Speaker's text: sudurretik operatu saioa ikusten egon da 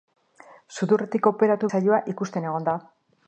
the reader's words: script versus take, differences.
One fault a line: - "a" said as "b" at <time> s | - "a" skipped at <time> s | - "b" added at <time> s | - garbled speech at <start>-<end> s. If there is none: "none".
none